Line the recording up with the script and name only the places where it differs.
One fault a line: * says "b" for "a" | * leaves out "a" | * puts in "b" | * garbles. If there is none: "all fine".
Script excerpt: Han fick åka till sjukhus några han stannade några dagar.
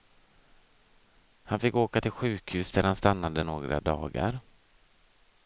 * says "där" for "några"